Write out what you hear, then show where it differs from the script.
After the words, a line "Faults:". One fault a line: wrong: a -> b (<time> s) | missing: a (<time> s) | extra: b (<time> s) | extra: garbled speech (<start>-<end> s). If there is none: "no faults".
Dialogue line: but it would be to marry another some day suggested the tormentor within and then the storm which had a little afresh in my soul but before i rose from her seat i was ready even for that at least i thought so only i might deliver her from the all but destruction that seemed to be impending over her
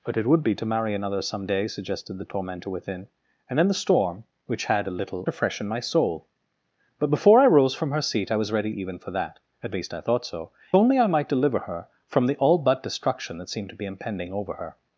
but it would be to marry another some day suggested the tormentor within and then the storm which had a little afresh in my soul but before i rose from her seat i was ready even for that at least i thought so only i might deliver her from the all but destruction that seemed to be impending over her
Faults:
no faults